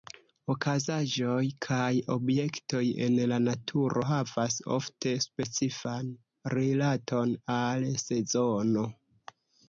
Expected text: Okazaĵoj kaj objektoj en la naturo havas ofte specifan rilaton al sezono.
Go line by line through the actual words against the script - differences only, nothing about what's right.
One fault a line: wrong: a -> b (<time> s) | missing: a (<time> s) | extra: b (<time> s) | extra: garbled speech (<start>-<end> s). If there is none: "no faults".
no faults